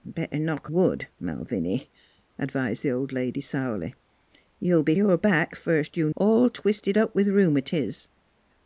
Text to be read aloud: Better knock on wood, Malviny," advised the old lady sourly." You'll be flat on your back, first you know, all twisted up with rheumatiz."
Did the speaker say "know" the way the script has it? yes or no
no